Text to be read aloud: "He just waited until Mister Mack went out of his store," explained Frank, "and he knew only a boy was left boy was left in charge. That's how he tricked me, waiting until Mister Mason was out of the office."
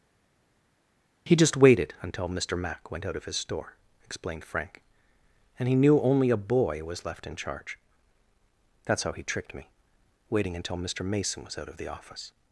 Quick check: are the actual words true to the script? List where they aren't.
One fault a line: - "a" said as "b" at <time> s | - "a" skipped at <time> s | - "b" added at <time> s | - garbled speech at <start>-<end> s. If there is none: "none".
- "boy was left" skipped at 7.3 s